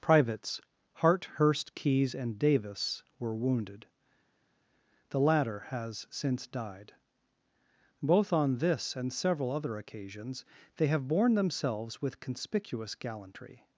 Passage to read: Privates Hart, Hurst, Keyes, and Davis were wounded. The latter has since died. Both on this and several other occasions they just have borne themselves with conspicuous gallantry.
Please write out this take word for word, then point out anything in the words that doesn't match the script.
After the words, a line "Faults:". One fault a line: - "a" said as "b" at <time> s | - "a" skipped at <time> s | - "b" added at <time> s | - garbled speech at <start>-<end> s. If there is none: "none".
Privates Hart, Hurst, Keyes, and Davis were wounded. The latter has since died. Both on this and several other occasions they have borne themselves with conspicuous gallantry.
Faults:
- "just" skipped at 10.9 s